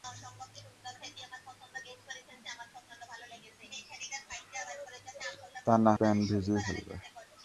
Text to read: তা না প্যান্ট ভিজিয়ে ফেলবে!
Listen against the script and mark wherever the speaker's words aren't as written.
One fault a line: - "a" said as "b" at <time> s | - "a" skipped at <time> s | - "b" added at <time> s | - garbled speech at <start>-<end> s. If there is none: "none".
none